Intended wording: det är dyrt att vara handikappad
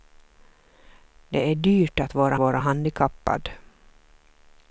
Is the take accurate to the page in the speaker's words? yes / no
no